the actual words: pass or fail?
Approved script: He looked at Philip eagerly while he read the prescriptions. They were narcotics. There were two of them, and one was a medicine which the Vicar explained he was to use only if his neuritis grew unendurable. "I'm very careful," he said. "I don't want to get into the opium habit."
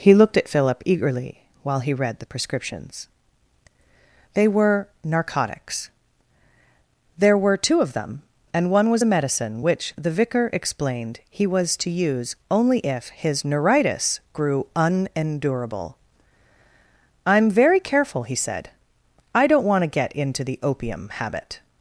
pass